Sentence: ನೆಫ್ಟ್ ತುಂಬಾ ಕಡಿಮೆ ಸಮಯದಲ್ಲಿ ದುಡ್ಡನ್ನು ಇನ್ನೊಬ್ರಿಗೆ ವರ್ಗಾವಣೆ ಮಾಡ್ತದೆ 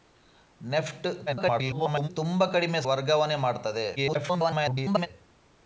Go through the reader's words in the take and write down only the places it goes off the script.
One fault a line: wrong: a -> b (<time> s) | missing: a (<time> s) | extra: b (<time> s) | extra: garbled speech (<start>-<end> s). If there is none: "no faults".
extra: garbled speech (1.3-2.1 s)
missing: ಸಮಯದಲ್ಲಿ ದುಡ್ಡನ್ನು ಇನ್ನೊಬ್ರಿಗೆ (2.8 s)
extra: garbled speech (4.0-5.1 s)